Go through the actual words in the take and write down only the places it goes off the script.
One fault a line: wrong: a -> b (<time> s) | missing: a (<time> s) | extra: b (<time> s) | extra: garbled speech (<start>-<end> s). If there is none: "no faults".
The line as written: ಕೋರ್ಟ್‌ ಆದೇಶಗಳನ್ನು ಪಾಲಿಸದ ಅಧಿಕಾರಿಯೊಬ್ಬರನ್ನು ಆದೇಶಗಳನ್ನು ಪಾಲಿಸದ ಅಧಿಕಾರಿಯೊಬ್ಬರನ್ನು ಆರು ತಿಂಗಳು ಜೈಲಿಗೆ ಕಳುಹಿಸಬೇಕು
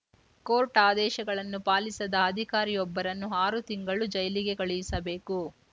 missing: ಆದೇಶಗಳನ್ನು ಪಾಲಿಸದ ಅಧಿಕಾರಿಯೊಬ್ಬರನ್ನು (3.3 s)